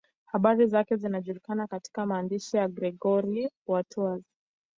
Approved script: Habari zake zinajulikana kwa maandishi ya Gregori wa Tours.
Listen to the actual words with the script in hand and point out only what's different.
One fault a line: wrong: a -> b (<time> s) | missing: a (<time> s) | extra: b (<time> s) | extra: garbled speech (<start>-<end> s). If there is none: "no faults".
wrong: kwa -> katika (1.7 s)